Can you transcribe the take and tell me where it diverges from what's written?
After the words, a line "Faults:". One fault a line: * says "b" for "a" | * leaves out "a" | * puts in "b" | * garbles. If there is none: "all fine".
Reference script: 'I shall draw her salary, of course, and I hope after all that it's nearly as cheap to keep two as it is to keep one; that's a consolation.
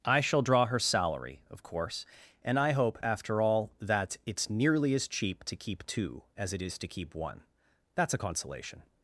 'I shall draw her salary, of course, and I hope after all that it's nearly as cheap to keep two as it is to keep one; that's a consolation.
Faults:
all fine